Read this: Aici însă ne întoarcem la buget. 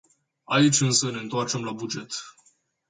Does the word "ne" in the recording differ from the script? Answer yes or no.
no